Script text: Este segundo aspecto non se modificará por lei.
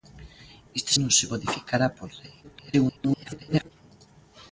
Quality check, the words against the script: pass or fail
fail